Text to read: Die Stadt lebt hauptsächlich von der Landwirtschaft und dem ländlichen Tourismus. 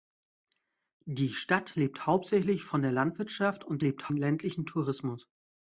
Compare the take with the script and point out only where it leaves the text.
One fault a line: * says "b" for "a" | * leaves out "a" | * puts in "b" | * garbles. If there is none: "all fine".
* says "lebt" for "dem"